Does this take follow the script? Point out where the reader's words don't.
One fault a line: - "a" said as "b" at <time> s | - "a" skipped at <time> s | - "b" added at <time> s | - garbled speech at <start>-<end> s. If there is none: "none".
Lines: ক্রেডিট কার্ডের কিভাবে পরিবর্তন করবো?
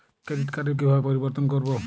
none